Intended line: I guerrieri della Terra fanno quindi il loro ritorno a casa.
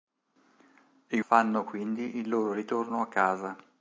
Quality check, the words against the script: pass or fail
fail